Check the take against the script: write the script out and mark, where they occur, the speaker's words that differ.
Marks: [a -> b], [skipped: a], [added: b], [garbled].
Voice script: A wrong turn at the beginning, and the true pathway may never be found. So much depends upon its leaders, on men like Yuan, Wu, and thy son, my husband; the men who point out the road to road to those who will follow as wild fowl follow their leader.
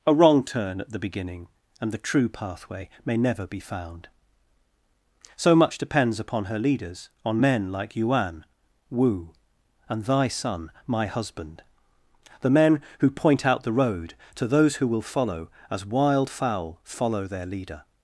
A wrong turn at the beginning, and the true pathway may never be found. So much depends upon [its -> her] leaders, on men like Yuan, Wu, and thy son, my husband; the men who point out the road to [skipped: road to] those who will follow as wild fowl follow their leader.